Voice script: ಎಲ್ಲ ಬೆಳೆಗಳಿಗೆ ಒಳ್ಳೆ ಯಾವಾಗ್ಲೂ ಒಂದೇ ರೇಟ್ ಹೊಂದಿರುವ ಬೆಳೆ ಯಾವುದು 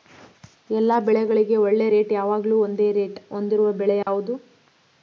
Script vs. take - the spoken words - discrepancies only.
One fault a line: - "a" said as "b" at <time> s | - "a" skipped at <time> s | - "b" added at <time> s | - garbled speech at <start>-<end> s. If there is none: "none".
- "ರೇಟ್" added at 1.9 s